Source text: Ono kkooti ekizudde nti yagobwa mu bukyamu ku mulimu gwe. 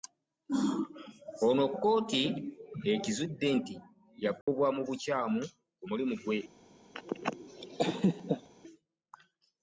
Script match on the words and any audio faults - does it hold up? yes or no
no